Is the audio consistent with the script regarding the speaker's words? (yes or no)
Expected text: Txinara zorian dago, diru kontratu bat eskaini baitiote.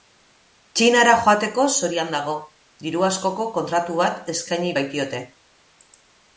no